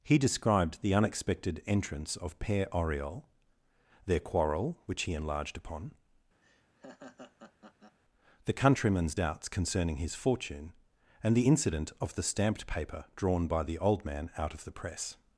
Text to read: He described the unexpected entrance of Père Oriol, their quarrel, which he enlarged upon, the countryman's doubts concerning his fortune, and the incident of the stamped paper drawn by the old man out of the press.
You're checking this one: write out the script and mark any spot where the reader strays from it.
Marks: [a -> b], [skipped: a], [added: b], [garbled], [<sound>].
He described the unexpected entrance of Père Oriol, their quarrel, which he enlarged upon, [laugh] the countryman's doubts concerning his fortune, and the incident of the stamped paper drawn by the old man out of the press.